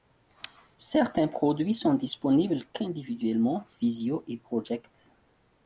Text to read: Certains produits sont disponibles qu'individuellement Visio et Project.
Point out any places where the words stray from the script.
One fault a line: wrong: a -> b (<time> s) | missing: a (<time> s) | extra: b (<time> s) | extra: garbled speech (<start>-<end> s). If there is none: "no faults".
no faults